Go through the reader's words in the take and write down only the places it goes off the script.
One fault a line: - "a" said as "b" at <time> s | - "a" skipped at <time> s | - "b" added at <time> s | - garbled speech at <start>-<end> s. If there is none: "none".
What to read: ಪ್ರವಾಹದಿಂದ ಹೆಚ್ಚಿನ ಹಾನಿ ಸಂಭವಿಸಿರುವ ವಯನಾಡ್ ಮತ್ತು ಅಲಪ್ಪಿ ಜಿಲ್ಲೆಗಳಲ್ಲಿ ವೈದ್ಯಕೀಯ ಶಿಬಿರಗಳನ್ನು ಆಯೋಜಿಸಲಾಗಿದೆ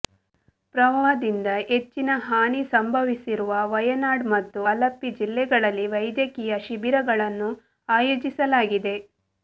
none